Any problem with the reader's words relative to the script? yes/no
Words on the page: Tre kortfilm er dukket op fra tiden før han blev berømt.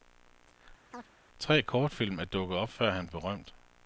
yes